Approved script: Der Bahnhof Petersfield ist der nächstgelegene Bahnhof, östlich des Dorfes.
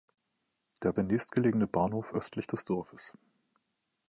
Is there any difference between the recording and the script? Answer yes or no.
yes